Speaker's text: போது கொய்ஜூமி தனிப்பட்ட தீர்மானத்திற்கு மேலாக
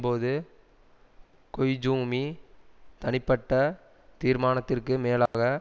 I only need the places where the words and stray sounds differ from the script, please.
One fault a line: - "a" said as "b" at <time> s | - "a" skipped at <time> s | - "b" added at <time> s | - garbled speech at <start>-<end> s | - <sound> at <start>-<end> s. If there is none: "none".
- dropout at 5.3-5.3 s